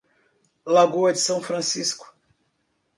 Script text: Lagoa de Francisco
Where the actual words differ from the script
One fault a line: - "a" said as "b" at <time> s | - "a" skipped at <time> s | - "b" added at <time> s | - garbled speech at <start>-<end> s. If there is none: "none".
- "São" added at 1.2 s